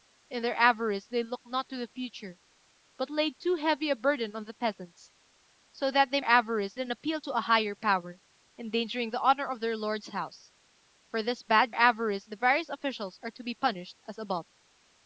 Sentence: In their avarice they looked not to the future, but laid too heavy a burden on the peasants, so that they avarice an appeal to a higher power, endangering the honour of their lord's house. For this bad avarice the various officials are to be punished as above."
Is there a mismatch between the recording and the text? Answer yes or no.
no